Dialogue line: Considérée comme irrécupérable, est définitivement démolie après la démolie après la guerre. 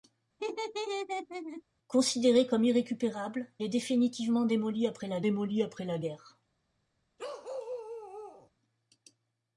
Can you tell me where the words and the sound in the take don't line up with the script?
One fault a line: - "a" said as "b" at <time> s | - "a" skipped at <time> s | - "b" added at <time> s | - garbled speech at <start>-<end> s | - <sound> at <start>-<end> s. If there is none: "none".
- laugh at 0.4-1.6 s
- bark at 7.2-8.5 s